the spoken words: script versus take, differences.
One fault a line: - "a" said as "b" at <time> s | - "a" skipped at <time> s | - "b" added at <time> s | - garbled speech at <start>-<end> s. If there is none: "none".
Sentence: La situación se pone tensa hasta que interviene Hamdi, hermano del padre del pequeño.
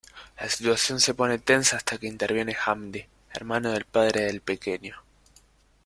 none